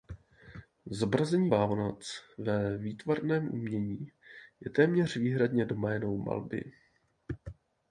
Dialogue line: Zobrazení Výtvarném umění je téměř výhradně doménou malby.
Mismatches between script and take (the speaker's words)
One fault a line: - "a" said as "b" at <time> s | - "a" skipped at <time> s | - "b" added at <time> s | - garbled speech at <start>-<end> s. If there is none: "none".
- "Vánoc ve" added at 1.5 s